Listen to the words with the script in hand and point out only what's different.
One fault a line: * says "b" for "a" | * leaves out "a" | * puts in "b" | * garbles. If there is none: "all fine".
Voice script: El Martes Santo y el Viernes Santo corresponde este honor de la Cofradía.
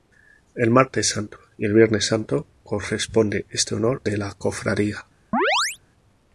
all fine